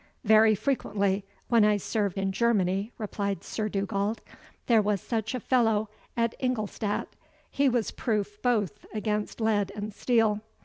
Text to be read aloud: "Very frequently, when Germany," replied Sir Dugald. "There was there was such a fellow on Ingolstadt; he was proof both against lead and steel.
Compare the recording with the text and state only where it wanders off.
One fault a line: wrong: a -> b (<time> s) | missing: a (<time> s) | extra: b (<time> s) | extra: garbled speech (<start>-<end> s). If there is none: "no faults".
extra: I served in (1.6 s)
missing: there was (5.0 s)
wrong: on -> at (6.2 s)